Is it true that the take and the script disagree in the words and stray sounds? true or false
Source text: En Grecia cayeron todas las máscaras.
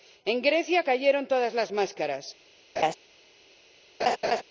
true